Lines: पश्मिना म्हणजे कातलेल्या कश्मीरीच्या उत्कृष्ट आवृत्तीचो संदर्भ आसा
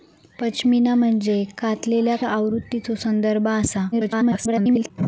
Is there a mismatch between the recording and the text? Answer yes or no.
yes